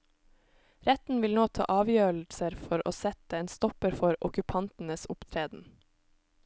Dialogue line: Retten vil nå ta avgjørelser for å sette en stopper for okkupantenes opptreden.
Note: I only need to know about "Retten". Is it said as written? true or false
true